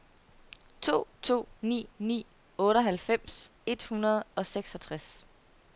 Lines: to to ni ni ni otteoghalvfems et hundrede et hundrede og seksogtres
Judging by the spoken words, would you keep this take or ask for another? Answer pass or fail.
fail